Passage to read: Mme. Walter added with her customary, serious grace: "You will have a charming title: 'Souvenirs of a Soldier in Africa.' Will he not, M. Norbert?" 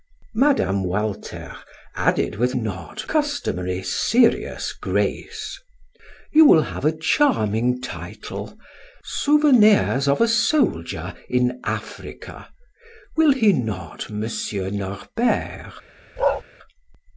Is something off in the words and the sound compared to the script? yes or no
yes